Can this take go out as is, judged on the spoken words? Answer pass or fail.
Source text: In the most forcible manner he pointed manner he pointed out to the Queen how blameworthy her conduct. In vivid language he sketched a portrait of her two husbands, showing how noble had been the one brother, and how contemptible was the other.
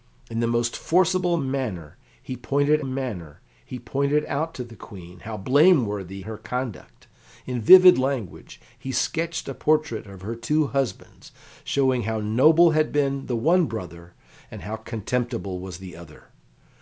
pass